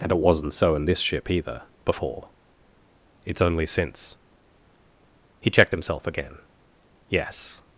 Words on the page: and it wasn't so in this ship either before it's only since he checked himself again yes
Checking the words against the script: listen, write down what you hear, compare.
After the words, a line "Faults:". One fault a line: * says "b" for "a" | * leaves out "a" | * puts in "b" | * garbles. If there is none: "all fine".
and it wasn't so in this ship either before it's only since he checked himself again yes
Faults:
all fine